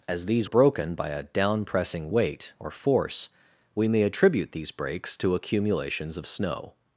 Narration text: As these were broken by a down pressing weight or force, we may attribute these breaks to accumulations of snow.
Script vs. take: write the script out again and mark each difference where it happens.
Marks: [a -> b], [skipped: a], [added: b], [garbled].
As these [skipped: were] broken by a down pressing weight or force, we may attribute these breaks to accumulations of snow.